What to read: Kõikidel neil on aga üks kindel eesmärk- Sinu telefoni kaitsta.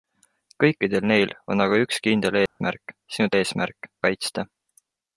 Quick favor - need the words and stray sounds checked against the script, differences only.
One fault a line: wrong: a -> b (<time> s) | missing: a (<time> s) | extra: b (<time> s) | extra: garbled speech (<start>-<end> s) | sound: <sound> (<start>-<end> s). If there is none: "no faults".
sound: dropout (2.5-2.6 s)
wrong: telefoni -> eesmärk (3.4 s)